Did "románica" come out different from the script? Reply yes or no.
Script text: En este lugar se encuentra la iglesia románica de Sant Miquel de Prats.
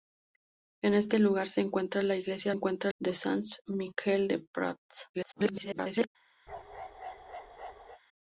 yes